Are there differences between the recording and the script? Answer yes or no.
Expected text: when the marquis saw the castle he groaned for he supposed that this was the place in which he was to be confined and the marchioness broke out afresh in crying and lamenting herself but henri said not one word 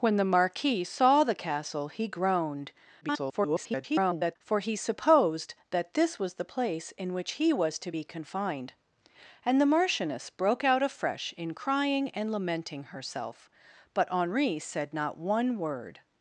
yes